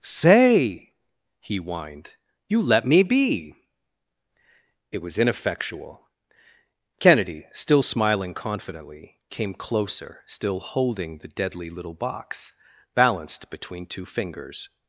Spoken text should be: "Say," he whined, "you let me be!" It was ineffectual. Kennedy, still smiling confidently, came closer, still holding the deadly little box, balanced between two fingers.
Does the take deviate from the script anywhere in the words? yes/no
no